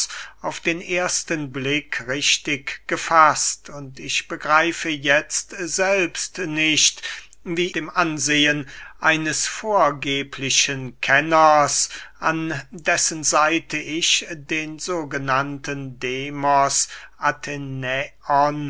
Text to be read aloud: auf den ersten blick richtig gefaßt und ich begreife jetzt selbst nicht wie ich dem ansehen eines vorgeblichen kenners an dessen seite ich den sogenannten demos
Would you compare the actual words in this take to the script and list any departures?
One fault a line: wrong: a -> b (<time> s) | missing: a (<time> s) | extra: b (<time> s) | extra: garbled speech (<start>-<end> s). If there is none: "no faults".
missing: ich (7.7 s)